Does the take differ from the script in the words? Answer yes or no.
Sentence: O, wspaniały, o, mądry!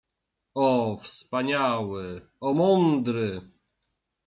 no